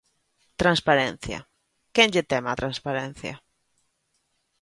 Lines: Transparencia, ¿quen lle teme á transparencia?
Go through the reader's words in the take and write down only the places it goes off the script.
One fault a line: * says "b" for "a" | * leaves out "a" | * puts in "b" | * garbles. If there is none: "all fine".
all fine